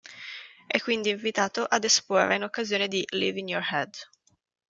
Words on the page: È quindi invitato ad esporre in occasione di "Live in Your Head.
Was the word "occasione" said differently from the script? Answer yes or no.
no